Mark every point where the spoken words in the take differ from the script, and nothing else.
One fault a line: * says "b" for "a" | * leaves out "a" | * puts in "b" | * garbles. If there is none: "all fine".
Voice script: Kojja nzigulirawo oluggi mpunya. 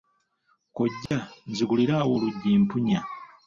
all fine